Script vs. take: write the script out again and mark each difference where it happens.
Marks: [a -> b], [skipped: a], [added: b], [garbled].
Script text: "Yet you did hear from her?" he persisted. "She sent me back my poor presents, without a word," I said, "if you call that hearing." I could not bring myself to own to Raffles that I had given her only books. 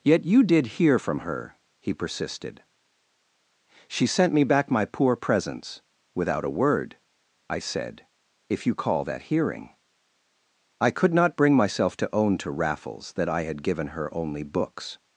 "Yet you did hear from her?" he persisted. "She sent me back my poor presents, without a word," I said, "if you call that hearing." I could not bring myself to own to Raffles that I had given her only books.